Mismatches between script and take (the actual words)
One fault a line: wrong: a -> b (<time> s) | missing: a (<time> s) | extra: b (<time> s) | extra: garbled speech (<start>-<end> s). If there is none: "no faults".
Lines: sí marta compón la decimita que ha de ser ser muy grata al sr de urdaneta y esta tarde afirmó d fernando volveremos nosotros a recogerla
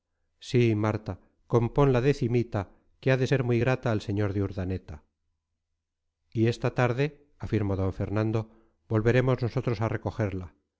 missing: ser (3.4 s)